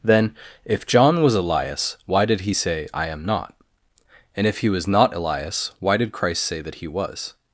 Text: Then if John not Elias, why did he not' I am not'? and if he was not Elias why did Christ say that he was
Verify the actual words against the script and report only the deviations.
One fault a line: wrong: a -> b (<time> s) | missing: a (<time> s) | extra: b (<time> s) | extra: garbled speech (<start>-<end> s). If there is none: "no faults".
wrong: not -> was (1.2 s)
wrong: not -> say (2.5 s)